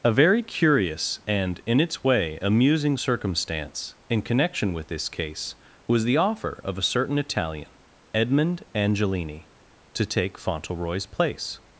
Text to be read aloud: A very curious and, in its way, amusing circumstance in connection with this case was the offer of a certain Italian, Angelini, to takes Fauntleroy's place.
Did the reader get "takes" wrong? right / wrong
wrong